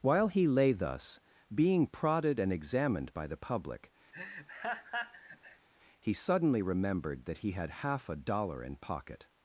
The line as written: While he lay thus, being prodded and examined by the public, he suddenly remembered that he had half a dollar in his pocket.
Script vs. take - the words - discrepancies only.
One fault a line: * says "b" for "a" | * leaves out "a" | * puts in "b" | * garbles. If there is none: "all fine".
* leaves out "his"